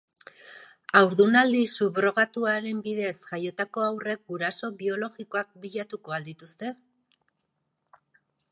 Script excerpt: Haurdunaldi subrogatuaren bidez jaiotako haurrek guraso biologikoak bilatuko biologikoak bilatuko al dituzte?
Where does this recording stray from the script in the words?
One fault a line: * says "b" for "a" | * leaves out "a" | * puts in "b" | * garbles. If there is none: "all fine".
* leaves out "biologikoak bilatuko"